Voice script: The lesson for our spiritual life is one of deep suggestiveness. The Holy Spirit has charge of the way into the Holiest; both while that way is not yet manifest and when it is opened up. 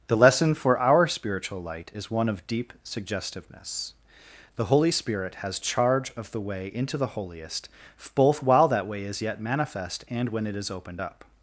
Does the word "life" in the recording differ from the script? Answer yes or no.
yes